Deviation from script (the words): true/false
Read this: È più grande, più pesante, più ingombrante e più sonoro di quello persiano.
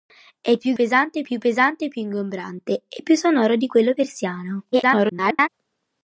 true